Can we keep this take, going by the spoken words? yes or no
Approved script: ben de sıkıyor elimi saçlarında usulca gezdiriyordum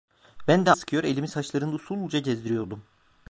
yes